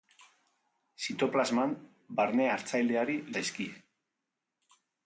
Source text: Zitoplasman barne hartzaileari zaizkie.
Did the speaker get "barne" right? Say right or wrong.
right